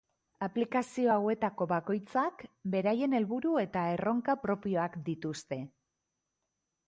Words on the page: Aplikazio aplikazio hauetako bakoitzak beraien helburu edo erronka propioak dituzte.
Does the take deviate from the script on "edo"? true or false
true